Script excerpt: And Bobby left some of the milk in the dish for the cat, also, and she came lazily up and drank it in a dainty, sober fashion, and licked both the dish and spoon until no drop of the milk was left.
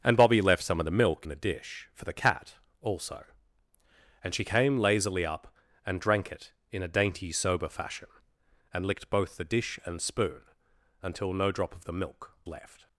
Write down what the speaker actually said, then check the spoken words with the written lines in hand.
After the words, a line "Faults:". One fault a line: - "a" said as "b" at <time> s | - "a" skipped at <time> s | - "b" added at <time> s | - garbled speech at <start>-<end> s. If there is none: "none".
And Bobby left some of the milk the dish for the cat, also, and she came lazily up and drank it in a dainty, sober fashion, and licked both the dish and spoon until no drop of the milk left.
Faults:
- "in" skipped at 1.3 s
- "was" skipped at 12.3 s